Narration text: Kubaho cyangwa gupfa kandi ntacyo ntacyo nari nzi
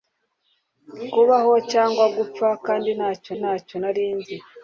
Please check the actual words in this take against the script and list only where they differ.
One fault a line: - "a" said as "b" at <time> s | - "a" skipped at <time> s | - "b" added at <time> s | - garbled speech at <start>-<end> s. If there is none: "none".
none